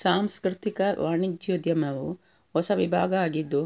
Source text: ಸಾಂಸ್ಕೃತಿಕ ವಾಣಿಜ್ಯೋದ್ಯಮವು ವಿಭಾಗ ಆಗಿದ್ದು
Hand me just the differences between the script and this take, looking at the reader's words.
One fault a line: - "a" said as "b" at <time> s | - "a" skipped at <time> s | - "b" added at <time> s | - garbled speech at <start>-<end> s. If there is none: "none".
- "ಹೊಸ" added at 2.5 s